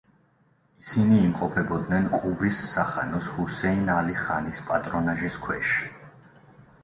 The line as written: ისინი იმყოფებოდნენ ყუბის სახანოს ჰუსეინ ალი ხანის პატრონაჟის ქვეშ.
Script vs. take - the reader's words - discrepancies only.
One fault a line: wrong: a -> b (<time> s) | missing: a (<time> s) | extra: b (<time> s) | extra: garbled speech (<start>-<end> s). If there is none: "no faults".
no faults